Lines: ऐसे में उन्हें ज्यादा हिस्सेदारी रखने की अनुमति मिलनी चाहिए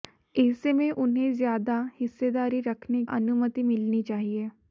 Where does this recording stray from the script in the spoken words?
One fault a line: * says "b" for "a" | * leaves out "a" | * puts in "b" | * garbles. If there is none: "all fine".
* leaves out "की"